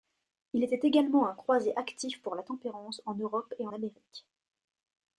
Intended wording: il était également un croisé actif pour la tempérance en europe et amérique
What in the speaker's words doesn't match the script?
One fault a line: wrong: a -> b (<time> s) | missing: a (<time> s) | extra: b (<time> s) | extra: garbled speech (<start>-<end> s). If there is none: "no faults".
no faults